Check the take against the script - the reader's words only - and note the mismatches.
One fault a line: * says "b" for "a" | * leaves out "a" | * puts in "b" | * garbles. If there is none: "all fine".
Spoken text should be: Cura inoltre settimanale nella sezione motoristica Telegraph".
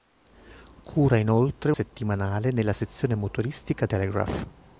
all fine